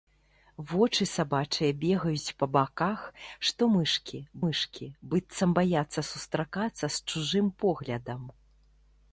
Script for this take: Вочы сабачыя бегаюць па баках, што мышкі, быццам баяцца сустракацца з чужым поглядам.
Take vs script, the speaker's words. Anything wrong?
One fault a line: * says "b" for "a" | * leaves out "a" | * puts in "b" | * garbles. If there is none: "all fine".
* puts in "мышкі"